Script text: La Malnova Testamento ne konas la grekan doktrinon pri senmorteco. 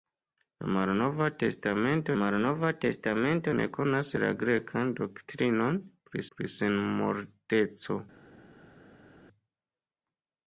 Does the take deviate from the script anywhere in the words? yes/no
yes